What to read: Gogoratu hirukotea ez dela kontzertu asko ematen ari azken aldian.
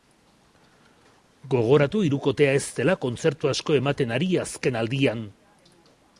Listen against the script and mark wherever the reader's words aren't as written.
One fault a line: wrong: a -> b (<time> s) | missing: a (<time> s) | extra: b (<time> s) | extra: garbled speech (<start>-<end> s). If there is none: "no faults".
no faults